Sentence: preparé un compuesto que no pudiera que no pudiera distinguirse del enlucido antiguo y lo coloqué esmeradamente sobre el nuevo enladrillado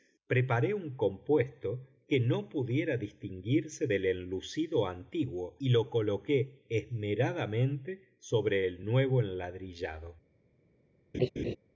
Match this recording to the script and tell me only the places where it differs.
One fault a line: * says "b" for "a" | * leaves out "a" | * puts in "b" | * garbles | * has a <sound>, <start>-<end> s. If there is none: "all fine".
* leaves out "que no pudiera"
* has a laugh, 11.1-11.6 s